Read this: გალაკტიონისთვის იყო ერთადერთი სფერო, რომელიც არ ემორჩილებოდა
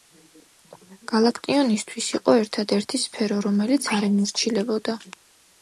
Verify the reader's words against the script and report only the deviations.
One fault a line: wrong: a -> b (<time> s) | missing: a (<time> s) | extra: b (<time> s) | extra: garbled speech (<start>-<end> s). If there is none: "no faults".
no faults